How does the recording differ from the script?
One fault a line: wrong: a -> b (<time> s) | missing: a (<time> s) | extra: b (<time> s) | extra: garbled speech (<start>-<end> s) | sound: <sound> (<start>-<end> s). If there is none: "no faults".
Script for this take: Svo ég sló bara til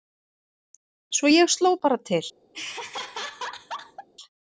sound: laugh (2.5-4.1 s)